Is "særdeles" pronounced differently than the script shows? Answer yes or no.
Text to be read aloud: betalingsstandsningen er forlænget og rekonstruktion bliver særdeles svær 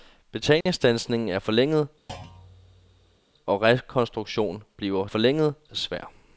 yes